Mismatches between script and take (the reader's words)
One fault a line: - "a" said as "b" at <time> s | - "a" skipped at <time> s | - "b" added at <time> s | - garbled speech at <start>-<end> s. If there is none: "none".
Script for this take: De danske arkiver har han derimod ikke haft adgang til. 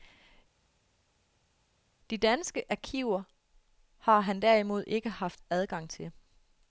none